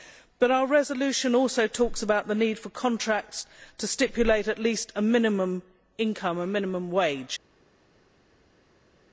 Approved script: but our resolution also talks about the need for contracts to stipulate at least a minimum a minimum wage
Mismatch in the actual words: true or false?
true